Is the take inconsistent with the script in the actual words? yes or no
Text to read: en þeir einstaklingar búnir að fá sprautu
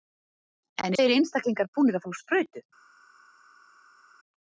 no